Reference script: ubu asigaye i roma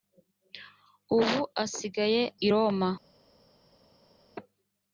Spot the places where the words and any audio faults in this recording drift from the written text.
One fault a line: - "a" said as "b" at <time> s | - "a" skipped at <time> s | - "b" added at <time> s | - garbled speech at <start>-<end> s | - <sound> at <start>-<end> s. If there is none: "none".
none